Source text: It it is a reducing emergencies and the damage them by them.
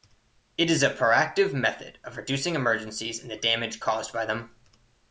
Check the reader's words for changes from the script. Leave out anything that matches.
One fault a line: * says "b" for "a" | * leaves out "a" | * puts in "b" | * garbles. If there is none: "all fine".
* leaves out "it"
* puts in "proactive method of"
* says "caused" for "them"